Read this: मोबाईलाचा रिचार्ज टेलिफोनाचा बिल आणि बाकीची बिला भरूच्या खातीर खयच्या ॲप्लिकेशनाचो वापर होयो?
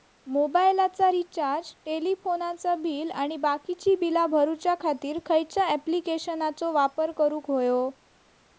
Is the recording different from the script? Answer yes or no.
yes